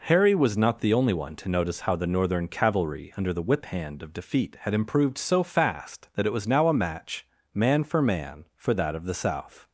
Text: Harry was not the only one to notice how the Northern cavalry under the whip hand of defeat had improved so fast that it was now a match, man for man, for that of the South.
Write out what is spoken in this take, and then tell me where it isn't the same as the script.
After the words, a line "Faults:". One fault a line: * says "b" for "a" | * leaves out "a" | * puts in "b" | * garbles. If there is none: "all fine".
Harry was not the only one to notice how the Northern cavalry under the whip hand of defeat had improved so fast that it was now a match, man for man, for that of the South.
Faults:
all fine